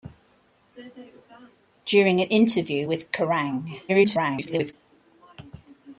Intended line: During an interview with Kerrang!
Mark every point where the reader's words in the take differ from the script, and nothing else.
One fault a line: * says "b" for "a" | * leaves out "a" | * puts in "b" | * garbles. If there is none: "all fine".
* garbles